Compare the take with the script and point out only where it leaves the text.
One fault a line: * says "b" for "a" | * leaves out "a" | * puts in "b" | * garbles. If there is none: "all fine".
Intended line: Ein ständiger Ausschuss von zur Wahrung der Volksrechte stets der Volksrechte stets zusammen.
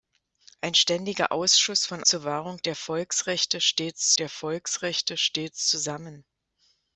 all fine